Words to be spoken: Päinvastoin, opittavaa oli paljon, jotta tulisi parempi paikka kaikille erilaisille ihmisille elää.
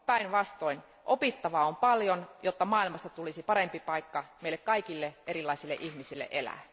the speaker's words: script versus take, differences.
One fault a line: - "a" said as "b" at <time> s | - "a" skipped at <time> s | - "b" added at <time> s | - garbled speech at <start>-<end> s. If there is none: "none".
- "oli" said as "on" at 1.6 s
- "maailmasta" added at 2.6 s
- "meille" added at 4.4 s